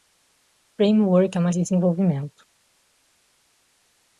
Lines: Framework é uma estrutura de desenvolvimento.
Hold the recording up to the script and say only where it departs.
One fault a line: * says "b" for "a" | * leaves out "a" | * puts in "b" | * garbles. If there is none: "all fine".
* leaves out "estrutura de"